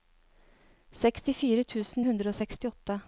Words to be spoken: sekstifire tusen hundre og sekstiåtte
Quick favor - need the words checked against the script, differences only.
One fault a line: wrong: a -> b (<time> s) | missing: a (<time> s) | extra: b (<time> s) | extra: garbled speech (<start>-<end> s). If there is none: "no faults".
no faults